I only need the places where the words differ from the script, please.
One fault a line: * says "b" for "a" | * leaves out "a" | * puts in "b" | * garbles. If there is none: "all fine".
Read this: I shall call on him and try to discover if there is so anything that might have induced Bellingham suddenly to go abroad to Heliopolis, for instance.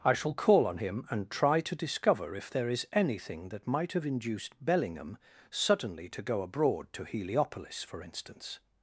* leaves out "so"